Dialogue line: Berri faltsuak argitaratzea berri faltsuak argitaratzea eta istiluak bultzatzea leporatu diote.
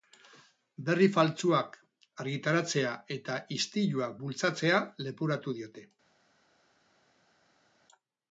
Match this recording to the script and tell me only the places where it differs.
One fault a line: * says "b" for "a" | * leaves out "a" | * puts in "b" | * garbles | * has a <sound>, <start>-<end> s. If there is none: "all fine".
* leaves out "berri faltsuak argitaratzea"